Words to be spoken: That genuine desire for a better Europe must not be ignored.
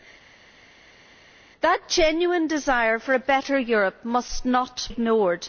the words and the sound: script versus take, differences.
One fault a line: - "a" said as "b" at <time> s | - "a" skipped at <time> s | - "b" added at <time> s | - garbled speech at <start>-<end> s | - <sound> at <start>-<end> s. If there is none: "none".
- "be" skipped at 4.9 s